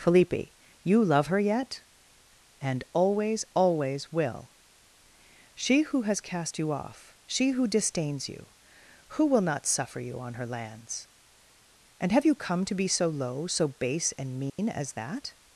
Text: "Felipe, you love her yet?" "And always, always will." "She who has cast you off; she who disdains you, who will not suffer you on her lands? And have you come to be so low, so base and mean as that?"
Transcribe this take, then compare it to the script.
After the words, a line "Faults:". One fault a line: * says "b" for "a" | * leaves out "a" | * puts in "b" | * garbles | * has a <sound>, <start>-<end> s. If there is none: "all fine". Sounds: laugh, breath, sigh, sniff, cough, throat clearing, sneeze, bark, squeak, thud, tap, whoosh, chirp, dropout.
"Felipe, you love her yet?" "And always, always will." "She who has cast you off; she who disdains you, who will not suffer you on her lands? And have you come to be so low, so base and mean as that?"
Faults:
* has a dropout, 14.5-14.6 s